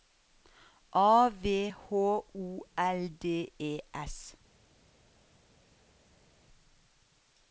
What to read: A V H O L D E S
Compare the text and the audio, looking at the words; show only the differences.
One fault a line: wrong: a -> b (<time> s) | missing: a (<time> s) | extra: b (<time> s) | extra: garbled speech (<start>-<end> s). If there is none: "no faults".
no faults